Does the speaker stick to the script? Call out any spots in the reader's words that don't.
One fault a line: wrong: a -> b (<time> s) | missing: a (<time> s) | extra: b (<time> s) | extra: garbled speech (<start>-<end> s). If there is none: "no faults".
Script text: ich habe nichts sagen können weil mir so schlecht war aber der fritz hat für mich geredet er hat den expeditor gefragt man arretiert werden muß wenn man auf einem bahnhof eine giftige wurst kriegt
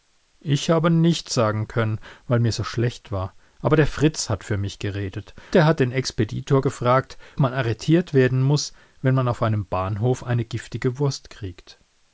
no faults